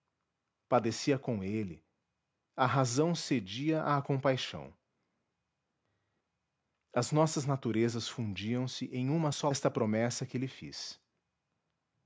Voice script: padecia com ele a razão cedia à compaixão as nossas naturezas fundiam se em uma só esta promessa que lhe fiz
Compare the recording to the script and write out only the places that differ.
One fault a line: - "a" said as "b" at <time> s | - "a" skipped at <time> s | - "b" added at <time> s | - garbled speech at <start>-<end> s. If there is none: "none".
none